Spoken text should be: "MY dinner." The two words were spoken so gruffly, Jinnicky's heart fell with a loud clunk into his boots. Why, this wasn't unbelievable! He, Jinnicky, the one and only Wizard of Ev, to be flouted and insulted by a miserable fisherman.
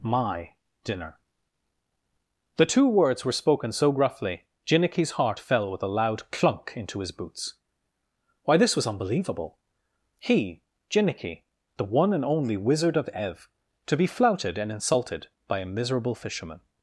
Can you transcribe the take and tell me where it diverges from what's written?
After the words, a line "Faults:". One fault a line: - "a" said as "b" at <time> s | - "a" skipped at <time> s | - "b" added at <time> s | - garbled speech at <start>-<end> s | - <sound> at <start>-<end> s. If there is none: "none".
"MY dinner." The two words were spoken so gruffly, Jinnicky's heart fell with a loud clunk into his boots. Why, this was unbelievable! He, Jinnicky, the one and only Wizard of Ev, to be flouted and insulted by a miserable fisherman.
Faults:
- "wasn't" said as "was" at 8.8 s